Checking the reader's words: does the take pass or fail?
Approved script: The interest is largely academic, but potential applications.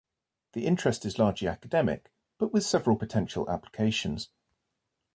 fail